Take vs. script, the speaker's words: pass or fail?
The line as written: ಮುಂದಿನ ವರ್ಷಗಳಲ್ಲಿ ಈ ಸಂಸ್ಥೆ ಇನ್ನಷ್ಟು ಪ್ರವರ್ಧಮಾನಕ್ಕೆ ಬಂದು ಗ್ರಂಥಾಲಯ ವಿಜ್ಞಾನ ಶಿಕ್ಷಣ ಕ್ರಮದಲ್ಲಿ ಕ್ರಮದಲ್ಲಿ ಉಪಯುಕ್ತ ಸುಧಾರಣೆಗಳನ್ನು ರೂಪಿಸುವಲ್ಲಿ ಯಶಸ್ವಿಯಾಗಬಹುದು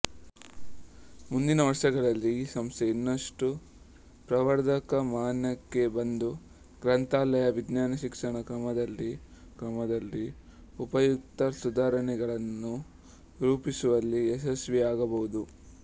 pass